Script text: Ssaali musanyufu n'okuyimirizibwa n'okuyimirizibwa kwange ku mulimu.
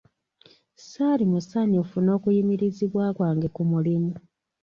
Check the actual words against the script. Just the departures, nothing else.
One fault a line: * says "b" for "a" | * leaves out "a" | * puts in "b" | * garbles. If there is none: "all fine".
* leaves out "n'okuyimirizibwa"